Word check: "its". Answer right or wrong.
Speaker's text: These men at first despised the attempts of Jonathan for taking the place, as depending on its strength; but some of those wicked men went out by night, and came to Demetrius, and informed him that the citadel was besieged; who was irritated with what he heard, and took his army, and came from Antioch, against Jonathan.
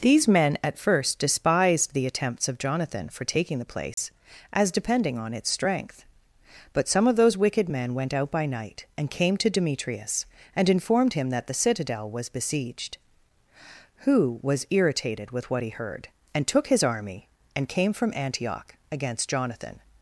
right